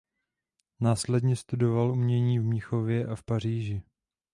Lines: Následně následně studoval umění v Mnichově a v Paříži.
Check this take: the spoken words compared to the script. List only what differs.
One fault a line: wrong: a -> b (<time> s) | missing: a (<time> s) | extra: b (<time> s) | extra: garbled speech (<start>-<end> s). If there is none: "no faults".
missing: následně (1.4 s)